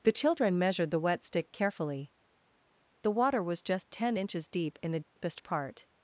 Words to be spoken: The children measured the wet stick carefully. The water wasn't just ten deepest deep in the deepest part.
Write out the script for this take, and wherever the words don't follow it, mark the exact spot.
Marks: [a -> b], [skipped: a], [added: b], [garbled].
The children measured the wet stick carefully. The water [wasn't -> was] just ten [deepest -> inches] deep in the deepest part.